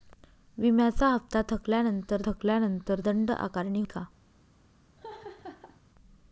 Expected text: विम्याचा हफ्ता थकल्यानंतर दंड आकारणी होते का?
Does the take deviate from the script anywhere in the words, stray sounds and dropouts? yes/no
yes